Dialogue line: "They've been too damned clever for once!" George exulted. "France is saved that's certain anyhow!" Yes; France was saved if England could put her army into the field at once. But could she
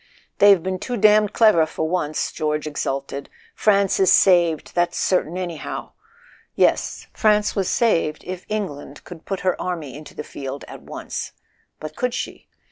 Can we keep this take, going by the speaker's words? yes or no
yes